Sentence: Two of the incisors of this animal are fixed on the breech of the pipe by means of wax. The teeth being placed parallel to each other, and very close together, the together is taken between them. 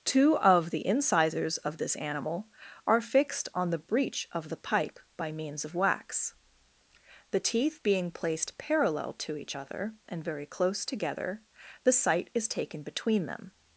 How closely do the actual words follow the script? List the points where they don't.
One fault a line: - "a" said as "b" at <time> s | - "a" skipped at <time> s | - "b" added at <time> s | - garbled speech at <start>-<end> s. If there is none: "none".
- "together" said as "sight" at 11.9 s